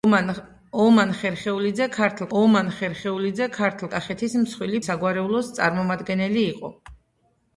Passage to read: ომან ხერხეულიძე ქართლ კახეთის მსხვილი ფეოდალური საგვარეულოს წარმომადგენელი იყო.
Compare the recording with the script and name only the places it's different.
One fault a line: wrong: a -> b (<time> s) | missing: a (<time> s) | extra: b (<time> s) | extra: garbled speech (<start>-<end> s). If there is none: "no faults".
extra: ომან ხერხეულიძე ქართლ (2.4 s)
missing: ფეოდალური (4.8 s)